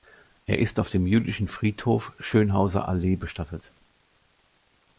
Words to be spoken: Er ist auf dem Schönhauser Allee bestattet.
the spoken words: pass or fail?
fail